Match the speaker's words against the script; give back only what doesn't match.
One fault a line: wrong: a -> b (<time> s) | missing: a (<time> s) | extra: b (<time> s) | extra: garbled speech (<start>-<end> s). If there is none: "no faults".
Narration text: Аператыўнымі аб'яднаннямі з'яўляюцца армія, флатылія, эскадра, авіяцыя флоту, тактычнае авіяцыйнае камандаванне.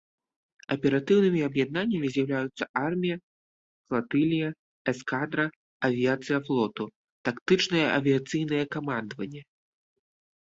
no faults